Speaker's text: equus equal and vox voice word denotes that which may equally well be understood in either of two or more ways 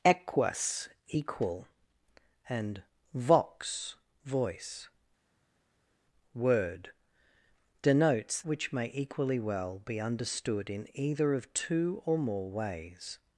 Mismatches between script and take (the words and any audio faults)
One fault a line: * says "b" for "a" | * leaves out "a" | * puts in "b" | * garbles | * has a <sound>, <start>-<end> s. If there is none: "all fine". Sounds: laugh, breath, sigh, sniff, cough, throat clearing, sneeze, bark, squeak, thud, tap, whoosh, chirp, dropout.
* leaves out "that"